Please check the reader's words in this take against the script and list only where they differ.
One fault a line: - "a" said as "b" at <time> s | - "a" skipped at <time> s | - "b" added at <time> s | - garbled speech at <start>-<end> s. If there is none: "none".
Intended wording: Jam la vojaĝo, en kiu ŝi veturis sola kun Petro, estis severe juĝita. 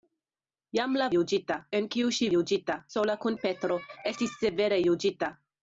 - "vojaĝo" said as "juĝita" at 1.1 s
- "veturis" said as "juĝita" at 2.3 s